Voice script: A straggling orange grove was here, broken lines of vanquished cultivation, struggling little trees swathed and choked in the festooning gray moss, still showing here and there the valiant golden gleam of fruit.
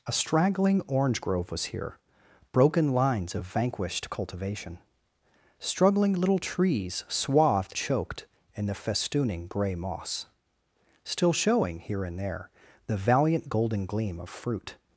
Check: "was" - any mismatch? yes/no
no